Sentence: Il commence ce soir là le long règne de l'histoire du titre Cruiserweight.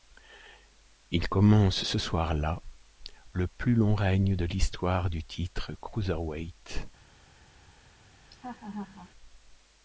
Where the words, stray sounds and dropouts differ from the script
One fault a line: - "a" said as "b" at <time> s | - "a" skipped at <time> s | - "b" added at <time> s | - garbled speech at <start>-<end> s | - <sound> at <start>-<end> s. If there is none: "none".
- "plus" added at 3.5 s
- laugh at 8.2-9.1 s